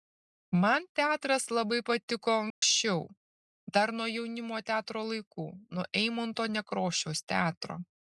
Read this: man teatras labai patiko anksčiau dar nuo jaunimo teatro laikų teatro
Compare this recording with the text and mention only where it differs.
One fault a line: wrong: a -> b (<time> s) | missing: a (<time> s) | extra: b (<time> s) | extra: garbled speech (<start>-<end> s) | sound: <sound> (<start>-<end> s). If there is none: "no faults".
sound: dropout (2.5-2.6 s)
extra: nuo eimunto nekrošiaus (5.8 s)